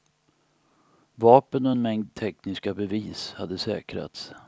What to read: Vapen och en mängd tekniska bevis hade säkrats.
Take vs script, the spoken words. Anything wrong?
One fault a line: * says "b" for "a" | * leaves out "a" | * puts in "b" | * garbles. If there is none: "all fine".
all fine